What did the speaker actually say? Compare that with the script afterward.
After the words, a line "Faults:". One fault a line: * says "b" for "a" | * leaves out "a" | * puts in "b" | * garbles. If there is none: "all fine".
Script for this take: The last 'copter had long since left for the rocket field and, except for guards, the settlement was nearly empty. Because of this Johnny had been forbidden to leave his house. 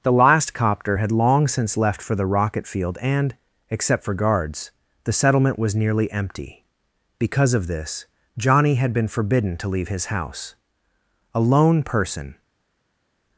The last 'copter had long since left for the rocket field and, except for guards, the settlement was nearly empty. Because of this Johnny had been forbidden to leave his house. A lone person
Faults:
* puts in "A lone person"